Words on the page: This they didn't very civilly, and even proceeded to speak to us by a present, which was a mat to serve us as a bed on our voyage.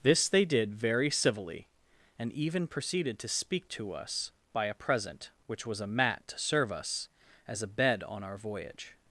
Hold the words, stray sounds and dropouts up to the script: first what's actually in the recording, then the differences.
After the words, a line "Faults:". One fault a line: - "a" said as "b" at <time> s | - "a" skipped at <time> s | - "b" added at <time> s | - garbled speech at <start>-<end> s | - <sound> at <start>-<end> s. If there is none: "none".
This they did very civilly, and even proceeded to speak to us by a present, which was a mat to serve us as a bed on our voyage.
Faults:
- "didn't" said as "did" at 0.5 s